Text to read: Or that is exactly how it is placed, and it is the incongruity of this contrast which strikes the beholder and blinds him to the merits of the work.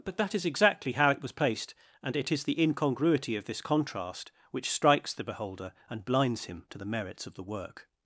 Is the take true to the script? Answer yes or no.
no